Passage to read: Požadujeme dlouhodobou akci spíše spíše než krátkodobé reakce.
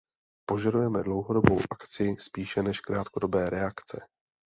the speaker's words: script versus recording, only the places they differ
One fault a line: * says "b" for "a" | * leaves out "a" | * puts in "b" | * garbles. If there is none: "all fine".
* leaves out "spíše"